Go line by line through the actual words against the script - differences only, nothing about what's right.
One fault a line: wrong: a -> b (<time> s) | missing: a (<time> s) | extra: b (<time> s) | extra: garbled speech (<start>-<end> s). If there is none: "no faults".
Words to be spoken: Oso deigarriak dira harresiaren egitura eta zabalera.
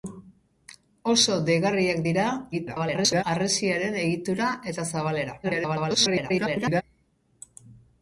extra: garbled speech (2.5-3.2 s)
extra: garbled speech (5.4-6.8 s)